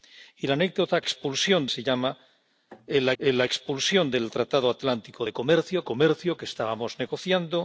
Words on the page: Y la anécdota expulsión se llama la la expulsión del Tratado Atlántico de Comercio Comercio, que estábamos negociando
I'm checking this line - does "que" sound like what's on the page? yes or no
yes